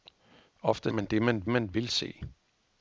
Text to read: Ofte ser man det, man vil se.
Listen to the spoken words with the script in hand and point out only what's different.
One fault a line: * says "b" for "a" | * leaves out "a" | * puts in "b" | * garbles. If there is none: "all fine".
* leaves out "ser"
* puts in "man"